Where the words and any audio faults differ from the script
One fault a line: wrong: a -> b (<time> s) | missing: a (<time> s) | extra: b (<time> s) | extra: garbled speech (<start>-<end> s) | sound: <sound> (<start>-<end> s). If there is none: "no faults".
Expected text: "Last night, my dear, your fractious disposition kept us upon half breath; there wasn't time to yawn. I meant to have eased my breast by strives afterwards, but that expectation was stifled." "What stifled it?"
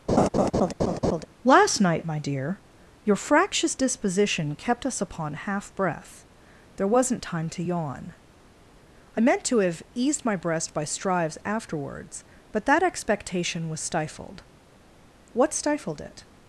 sound: laugh (0.1-1.3 s)